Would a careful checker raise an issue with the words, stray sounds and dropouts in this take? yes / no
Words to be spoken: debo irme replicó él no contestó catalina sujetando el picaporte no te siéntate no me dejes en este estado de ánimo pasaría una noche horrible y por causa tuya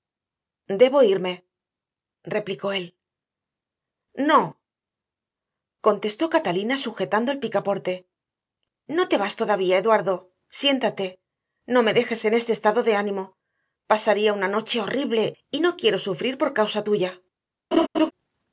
yes